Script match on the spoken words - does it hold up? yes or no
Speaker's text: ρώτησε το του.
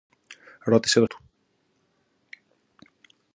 yes